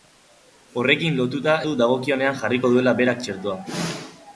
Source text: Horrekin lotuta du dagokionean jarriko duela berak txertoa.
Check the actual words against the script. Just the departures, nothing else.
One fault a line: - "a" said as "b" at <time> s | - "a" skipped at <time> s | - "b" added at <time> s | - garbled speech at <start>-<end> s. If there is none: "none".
none